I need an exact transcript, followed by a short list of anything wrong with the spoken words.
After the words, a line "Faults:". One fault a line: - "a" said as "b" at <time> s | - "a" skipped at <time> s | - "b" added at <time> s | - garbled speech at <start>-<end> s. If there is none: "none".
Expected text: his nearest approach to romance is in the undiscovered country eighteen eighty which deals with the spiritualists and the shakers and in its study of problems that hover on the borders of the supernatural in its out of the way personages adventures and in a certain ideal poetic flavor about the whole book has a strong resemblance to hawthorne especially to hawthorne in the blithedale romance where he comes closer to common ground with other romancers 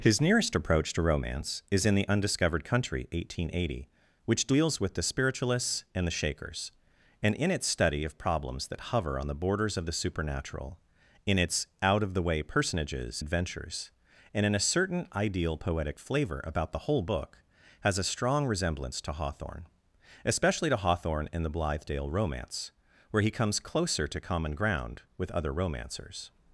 his nearest approach to romance is in the undiscovered country eighteen eighty which deals with the spiritualists and the shakers and in its study of problems that hover on the borders of the supernatural in its out of the way personages adventures and in a certain ideal poetic flavor about the whole book has a strong resemblance to hawthorne especially to hawthorne in the blithedale romance where he comes closer to common ground with other romancers
Faults:
none